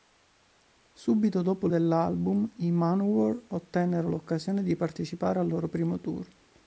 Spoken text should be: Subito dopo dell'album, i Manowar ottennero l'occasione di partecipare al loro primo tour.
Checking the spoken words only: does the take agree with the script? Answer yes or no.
yes